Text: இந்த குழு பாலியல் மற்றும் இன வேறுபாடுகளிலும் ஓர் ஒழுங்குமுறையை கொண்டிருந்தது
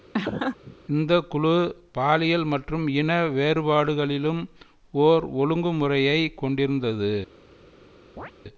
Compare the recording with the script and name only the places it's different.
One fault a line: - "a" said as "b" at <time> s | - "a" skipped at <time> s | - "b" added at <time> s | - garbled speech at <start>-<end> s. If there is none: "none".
none